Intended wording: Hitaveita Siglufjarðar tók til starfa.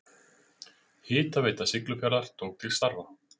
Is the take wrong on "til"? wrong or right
right